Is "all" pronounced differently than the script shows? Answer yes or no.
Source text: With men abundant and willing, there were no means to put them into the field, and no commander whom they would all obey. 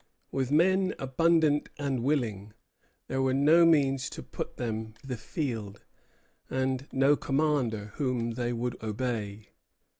yes